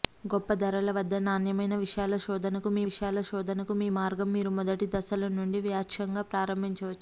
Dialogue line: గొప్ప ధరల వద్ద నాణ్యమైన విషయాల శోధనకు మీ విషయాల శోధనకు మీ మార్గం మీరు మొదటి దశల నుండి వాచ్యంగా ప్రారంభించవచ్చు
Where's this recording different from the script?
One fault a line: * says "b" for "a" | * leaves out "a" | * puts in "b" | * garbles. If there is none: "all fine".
all fine